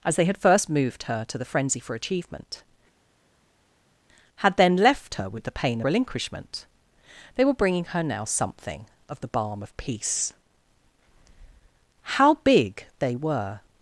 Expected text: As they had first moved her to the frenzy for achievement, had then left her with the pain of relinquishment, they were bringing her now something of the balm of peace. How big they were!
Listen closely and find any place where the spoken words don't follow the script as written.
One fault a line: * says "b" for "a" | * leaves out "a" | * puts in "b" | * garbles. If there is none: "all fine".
* leaves out "of"